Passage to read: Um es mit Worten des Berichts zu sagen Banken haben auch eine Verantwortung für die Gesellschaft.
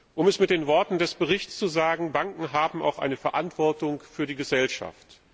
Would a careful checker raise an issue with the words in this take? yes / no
yes